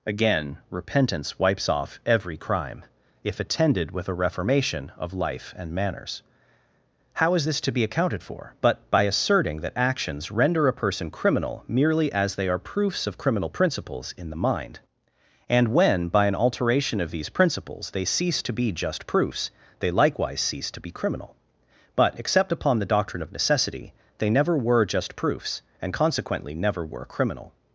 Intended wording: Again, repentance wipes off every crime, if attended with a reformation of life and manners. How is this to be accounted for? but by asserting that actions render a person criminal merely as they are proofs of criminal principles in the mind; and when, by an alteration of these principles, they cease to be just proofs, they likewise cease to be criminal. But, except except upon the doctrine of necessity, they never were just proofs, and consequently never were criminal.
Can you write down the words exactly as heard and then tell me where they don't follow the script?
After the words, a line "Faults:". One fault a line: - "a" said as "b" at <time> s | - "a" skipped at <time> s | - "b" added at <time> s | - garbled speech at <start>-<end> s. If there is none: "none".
Again, repentance wipes off every crime, if attended with a reformation of life and manners. How is this to be accounted for? but by asserting that actions render a person criminal merely as they are proofs of criminal principles in the mind; and when, by an alteration of these principles, they cease to be just proofs, they likewise cease to be criminal. But, except upon the doctrine of necessity, they never were just proofs, and consequently never were criminal.
Faults:
- "except" skipped at 22.5 s